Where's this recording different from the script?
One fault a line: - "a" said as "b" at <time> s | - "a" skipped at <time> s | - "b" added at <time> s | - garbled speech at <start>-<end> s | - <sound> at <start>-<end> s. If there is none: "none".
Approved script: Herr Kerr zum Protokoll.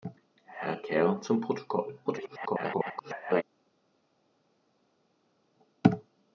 - garbled speech at 2.0-3.4 s